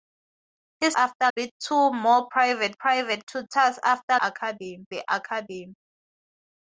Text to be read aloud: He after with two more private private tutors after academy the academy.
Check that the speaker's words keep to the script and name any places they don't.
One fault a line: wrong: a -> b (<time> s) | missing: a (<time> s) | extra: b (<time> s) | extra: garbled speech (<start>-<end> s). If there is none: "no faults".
no faults